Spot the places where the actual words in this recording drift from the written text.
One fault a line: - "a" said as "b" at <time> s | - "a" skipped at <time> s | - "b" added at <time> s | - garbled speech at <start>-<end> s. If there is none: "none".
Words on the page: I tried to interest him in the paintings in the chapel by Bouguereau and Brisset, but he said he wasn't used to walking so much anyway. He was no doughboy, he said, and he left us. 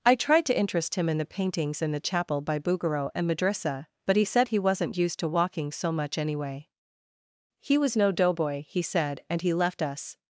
- "Brisset" said as "Madrissa" at 3.3 s